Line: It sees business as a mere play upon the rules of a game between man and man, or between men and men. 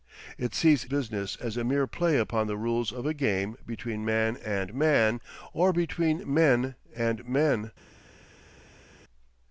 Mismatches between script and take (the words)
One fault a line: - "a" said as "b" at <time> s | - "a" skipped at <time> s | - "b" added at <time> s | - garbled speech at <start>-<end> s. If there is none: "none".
none